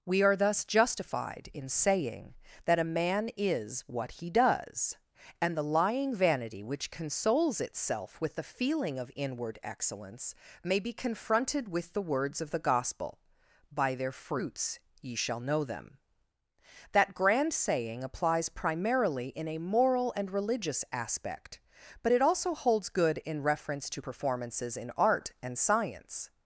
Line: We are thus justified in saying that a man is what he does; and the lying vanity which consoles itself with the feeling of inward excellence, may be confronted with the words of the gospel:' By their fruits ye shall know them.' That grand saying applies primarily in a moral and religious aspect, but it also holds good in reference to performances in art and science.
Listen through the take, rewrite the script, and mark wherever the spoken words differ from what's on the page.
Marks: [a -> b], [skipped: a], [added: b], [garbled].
We are thus justified in saying that a man is what he does; and the lying vanity which consoles itself with the feeling of inward excellence, may be confronted with the words of the gospel:' By their fruits ye shall know them.' That grand saying applies primarily in a moral and religious aspect, but it also holds good in reference to performances in art and science.